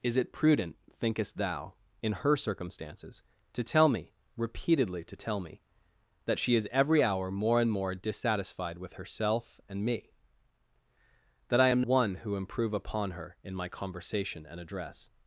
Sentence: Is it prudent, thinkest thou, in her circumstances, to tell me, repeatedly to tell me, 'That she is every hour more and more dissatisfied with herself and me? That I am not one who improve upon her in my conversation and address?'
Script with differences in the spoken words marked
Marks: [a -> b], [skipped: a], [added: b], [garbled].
Is it prudent, thinkest thou, in her circumstances, to tell me, repeatedly to tell me, 'That she is every hour more and more dissatisfied with herself and me? That I am [skipped: not] one who improve upon her in my conversation and address?'